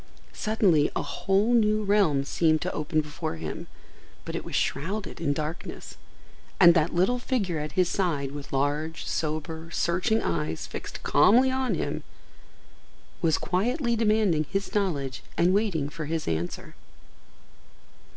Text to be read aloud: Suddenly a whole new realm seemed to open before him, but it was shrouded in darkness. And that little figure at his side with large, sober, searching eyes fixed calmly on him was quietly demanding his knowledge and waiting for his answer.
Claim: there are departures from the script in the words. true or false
false